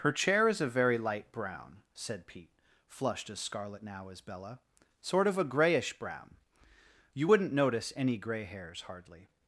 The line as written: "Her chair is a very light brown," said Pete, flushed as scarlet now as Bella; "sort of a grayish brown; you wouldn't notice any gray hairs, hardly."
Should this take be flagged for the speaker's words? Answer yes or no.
no